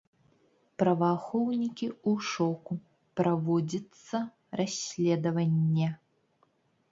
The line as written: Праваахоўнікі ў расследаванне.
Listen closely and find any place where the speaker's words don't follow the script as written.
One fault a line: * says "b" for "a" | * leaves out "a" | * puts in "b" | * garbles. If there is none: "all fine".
* puts in "шоку праводзіцца"